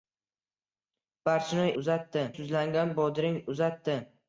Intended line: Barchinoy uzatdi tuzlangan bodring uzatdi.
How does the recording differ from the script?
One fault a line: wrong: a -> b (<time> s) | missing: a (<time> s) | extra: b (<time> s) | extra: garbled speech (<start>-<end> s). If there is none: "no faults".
no faults